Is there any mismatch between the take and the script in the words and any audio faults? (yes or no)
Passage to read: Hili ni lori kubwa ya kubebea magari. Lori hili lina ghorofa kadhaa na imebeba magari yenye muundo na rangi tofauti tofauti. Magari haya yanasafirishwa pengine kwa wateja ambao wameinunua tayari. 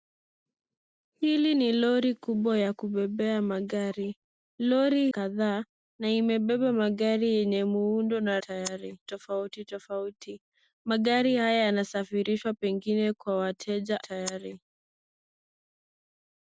yes